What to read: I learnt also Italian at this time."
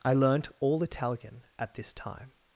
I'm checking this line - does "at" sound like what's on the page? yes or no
yes